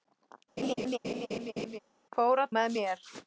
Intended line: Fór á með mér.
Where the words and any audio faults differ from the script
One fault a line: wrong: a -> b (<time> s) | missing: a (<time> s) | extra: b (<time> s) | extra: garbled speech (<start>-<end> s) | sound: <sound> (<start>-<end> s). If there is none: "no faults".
sound: laugh (0.6-1.8 s)